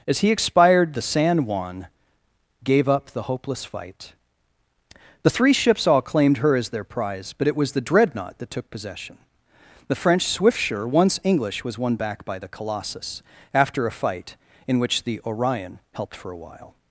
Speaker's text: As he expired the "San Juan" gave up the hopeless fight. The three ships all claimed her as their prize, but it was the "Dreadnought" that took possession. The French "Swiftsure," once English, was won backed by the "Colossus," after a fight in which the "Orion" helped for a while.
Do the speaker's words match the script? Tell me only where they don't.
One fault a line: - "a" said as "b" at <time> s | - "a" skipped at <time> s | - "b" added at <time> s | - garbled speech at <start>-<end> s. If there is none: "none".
- "backed" said as "back" at 12.0 s